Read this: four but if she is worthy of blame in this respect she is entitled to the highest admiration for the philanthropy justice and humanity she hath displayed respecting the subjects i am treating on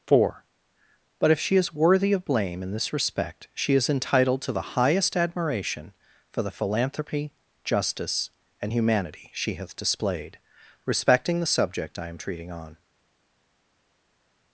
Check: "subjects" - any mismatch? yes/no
yes